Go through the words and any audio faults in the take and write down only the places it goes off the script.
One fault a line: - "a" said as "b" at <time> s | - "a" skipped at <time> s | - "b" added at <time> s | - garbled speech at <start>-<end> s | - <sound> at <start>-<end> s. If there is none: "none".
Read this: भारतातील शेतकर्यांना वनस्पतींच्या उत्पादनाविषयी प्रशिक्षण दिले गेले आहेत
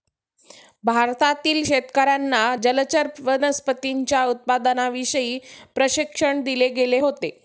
- "जलचर" added at 2.6 s
- "आहेत" said as "होते" at 7.0 s